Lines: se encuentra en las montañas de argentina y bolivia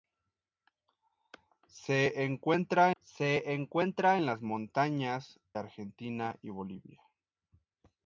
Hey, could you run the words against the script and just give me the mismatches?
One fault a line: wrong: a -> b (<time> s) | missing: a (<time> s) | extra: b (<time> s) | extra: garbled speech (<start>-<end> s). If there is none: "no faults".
extra: se encuentra (3.0 s)
missing: de (5.4 s)